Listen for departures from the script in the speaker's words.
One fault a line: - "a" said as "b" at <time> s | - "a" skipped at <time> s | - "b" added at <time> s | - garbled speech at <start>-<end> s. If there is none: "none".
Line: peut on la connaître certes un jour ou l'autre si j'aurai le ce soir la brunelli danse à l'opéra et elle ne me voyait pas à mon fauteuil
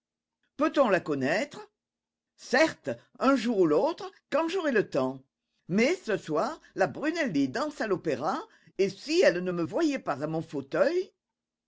- "si" said as "quand" at 4.3 s
- "temps mais" added at 4.9 s
- "si" added at 8.9 s